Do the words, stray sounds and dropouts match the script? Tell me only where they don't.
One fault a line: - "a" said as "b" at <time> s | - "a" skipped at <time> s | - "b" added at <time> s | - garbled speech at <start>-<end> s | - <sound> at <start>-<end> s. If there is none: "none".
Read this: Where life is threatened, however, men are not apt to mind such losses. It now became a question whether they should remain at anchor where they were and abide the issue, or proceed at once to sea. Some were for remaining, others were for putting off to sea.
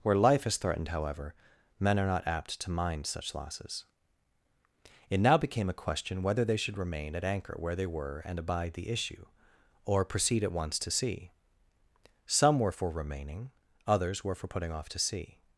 none